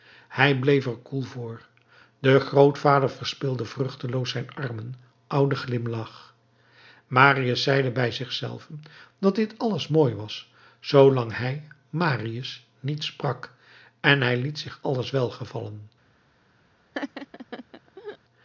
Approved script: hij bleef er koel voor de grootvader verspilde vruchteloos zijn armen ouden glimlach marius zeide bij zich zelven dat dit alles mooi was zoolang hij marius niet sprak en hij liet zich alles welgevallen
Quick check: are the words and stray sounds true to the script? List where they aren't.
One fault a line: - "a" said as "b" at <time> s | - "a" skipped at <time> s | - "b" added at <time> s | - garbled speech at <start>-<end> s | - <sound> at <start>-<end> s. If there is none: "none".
- laugh at 16.9-18.2 s